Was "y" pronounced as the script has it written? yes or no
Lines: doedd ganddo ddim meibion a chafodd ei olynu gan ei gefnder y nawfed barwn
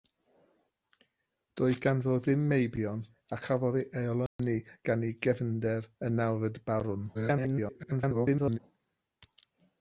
yes